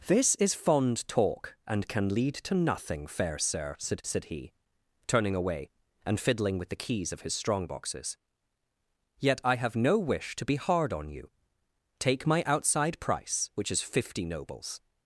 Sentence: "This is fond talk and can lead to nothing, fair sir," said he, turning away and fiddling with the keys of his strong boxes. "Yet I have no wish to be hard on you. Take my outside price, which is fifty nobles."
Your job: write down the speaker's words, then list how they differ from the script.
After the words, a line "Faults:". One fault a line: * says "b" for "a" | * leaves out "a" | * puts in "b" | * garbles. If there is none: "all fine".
"This is fond talk and can lead to nothing, fair sir," said said he, turning away and fiddling with the keys of his strong boxes. "Yet I have no wish to be hard on you. Take my outside price, which is fifty nobles."
Faults:
* puts in "said"